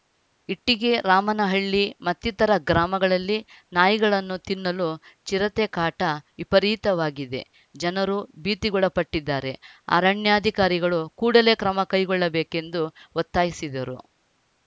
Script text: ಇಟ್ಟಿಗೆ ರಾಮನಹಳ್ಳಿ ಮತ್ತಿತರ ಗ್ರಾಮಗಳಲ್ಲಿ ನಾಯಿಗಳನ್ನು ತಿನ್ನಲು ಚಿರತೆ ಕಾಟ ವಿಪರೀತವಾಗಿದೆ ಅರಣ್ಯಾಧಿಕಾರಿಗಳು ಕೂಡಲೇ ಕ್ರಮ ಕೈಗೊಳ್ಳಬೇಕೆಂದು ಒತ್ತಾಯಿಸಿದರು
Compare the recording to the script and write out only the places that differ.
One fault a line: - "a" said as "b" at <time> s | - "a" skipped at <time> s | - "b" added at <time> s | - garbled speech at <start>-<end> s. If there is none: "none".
- "ಜನರು ಭೀತಿಗೊಳಪಟ್ಟಿದ್ದಾರೆ" added at 7.8 s